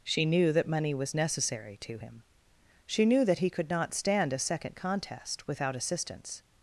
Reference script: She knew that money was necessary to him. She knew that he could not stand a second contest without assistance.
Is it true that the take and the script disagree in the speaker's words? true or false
false